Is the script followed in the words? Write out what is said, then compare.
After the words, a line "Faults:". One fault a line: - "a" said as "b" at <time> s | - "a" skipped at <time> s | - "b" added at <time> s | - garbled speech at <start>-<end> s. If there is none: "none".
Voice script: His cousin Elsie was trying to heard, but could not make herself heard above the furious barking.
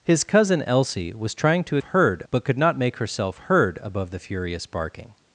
His cousin Elsie was trying to heard, but could not make herself heard above the furious barking.
Faults:
none